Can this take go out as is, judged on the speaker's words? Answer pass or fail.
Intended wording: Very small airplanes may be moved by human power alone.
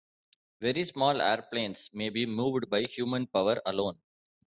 pass